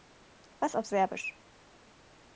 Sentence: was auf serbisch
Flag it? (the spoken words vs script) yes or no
no